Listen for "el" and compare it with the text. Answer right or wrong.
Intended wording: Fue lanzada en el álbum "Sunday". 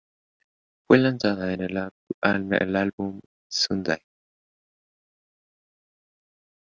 right